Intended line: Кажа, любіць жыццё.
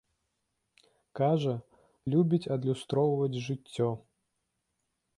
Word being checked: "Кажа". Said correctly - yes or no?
yes